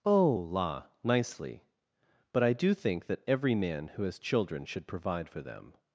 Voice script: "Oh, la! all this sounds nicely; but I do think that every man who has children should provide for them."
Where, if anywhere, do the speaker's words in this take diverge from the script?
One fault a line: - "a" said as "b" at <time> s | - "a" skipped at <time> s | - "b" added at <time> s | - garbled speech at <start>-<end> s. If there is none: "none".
- "all this sounds" skipped at 0.9 s